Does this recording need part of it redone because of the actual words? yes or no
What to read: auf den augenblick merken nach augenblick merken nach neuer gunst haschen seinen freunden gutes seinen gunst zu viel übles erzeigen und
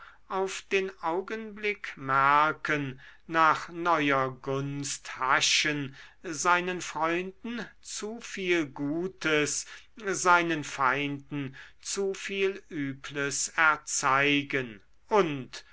yes